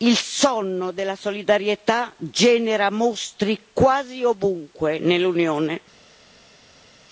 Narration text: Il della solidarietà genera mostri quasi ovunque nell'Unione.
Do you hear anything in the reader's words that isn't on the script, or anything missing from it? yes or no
yes